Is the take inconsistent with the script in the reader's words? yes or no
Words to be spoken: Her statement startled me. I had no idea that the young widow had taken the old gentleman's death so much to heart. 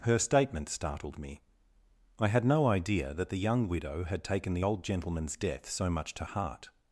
no